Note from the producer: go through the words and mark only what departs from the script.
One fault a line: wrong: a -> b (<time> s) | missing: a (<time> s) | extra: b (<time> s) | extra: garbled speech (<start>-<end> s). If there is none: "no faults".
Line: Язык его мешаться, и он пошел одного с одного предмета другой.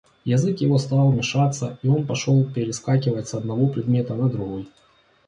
extra: стал (0.8 s)
wrong: одного -> перескакивать (2.4 s)
extra: на (4.1 s)